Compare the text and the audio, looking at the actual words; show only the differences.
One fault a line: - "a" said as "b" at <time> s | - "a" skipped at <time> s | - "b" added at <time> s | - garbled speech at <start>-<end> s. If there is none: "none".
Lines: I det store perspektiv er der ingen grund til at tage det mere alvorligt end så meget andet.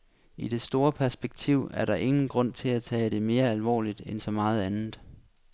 none